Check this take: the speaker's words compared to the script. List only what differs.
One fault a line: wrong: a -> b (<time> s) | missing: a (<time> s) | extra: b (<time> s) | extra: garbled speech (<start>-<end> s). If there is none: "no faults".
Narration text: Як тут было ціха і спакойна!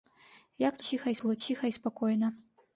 wrong: тут -> ціха (0.9 s)